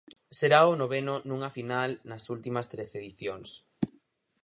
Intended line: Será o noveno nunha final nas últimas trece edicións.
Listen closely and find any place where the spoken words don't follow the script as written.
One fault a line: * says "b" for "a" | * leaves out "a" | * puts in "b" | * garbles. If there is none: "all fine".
all fine